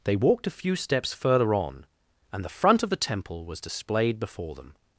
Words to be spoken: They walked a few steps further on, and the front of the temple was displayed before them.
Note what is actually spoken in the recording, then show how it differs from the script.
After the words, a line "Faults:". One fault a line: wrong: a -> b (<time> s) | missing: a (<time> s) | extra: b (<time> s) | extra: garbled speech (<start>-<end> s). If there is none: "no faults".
They walked a few steps further on, and the front of the temple was displayed before them.
Faults:
no faults